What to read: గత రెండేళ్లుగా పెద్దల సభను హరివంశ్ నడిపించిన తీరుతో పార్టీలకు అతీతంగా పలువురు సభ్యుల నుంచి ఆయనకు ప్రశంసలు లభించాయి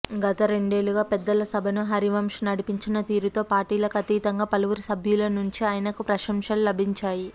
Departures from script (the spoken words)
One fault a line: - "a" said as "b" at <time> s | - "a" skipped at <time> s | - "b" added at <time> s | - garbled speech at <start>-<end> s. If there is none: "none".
none